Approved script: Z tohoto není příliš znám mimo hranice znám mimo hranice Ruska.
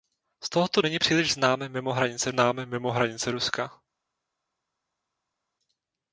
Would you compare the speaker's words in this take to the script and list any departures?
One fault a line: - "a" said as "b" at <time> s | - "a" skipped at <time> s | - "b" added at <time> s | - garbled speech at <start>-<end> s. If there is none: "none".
none